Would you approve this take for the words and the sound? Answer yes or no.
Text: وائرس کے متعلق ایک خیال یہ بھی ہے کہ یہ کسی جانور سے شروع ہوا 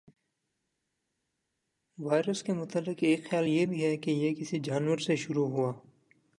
yes